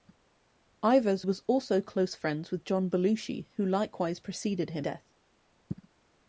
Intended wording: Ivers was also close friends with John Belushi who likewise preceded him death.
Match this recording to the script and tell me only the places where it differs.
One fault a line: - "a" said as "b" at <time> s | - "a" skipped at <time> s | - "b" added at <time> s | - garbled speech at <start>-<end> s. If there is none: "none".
none